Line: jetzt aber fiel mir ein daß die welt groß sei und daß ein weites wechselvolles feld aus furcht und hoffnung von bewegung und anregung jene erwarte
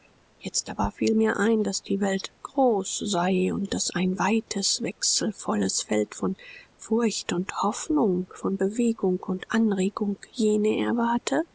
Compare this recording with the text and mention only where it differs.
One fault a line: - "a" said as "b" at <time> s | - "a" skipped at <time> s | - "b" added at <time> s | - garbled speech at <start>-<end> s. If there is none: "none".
- "aus" said as "von" at 6.2 s